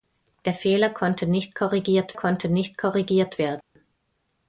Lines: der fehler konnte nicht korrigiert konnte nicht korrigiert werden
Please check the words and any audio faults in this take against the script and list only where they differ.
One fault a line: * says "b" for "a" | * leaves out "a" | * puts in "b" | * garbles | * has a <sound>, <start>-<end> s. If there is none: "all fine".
* has a dropout, 3.6-3.8 s